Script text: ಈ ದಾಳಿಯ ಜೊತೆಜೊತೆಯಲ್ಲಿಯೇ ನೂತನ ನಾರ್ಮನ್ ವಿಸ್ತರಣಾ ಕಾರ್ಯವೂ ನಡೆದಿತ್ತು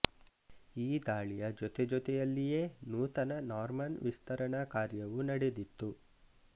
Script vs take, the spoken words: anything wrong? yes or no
no